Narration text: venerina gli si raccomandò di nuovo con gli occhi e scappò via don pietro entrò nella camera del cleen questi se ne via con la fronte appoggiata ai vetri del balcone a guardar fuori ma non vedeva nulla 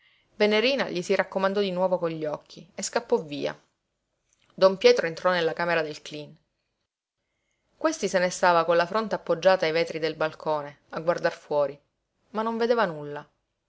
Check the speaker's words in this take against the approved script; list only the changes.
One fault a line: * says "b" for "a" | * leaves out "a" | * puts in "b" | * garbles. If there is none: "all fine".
* says "stava" for "via"